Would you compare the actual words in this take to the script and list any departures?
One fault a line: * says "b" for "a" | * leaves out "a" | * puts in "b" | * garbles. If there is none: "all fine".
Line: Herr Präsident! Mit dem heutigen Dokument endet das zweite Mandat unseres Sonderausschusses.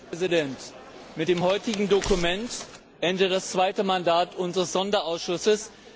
all fine